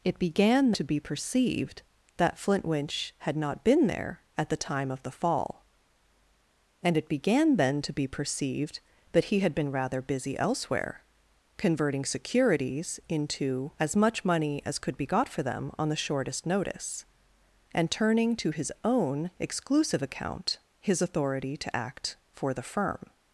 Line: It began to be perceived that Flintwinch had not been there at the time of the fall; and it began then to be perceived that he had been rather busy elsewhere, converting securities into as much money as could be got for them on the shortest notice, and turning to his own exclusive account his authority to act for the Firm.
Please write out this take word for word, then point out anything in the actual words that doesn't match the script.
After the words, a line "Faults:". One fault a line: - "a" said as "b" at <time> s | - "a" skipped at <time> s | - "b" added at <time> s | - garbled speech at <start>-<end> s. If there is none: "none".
It began to be perceived that Flintwinch had not been there at the time of the fall; and it began then to be perceived that he had been rather busy elsewhere, converting securities into as much money as could be got for them on the shortest notice, and turning to his own exclusive account his authority to act for the Firm.
Faults:
none